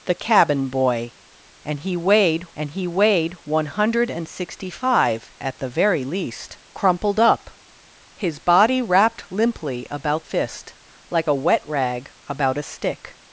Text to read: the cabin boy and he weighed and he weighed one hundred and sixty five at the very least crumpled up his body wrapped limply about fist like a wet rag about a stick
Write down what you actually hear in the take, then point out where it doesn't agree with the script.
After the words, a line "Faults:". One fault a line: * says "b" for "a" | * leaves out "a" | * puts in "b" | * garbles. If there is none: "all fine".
the cabin boy and he weighed and he weighed one hundred and sixty five at the very least crumpled up his body wrapped limply about fist like a wet rag about a stick
Faults:
all fine